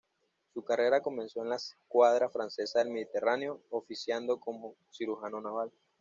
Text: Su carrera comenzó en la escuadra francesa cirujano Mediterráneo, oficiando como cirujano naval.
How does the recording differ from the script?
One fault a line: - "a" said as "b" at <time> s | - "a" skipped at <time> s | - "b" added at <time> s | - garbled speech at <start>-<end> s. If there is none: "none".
- "cirujano" said as "del" at 2.8 s